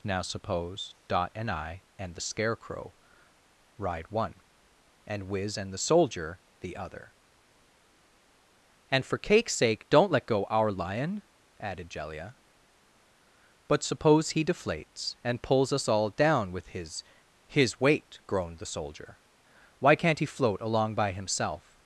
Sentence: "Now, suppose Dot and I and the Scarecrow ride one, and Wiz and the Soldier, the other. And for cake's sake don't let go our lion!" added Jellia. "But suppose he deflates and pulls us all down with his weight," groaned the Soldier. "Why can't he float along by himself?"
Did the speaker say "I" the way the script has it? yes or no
yes